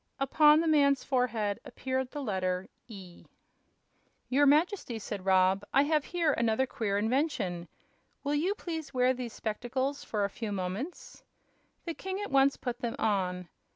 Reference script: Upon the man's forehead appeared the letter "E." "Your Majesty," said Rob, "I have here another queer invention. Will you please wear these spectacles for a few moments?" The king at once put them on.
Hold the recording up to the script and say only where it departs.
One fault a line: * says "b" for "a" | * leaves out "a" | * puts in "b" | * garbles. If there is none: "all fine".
all fine